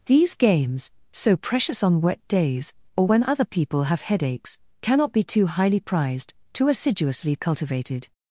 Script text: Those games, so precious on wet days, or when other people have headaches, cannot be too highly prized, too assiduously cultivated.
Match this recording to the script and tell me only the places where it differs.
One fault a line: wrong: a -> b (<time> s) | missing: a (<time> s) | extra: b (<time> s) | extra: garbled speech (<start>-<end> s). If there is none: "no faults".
wrong: Those -> These (0.1 s)